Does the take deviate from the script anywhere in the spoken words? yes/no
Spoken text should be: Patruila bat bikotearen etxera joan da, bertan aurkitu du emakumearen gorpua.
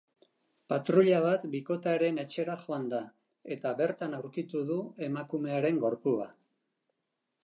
yes